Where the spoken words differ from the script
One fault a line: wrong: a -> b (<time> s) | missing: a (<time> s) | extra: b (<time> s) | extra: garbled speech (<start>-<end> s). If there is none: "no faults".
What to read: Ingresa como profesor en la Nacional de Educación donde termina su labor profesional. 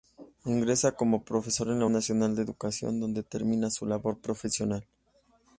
no faults